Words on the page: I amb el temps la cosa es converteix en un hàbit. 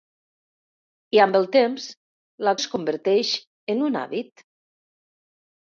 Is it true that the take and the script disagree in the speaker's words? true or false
true